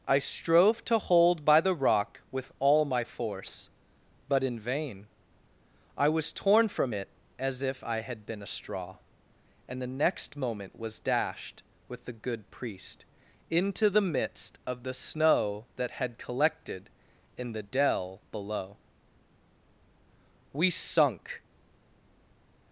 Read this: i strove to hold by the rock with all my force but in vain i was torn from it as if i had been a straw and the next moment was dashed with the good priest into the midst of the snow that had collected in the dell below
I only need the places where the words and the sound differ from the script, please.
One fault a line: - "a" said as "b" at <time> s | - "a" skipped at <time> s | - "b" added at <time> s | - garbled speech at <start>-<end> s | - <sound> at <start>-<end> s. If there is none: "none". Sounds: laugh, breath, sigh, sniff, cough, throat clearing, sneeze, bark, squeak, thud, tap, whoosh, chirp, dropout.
- "we sunk" added at 20.5 s